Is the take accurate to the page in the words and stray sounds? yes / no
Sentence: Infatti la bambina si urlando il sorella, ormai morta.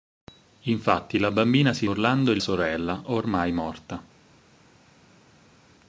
yes